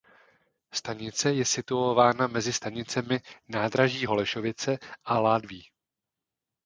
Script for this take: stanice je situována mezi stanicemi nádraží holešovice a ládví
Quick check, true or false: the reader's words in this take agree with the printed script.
true